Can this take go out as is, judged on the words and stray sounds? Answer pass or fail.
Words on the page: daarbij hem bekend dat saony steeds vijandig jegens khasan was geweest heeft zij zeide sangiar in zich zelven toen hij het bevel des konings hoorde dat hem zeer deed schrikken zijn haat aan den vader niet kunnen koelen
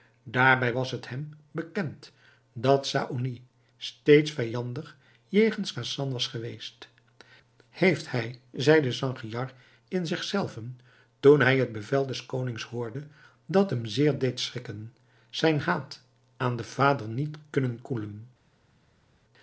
fail